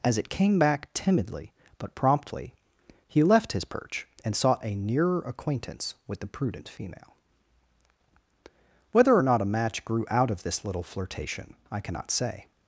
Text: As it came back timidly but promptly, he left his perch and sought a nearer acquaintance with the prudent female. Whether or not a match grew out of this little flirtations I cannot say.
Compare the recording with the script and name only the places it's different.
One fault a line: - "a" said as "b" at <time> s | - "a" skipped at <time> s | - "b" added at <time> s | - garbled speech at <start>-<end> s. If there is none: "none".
- "flirtations" said as "flirtation" at 10.8 s